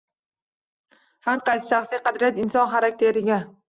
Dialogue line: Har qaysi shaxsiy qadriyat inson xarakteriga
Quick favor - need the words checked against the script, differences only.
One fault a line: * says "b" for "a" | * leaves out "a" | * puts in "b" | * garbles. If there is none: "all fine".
all fine